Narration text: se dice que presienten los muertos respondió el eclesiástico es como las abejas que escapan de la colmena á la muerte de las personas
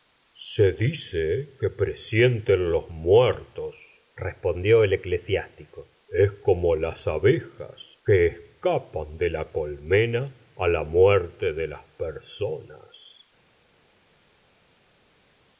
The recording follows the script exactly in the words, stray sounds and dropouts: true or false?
true